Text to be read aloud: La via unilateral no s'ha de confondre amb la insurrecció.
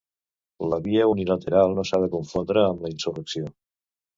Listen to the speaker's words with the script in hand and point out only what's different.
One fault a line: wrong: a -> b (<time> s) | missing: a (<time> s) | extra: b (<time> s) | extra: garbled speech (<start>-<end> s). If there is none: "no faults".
no faults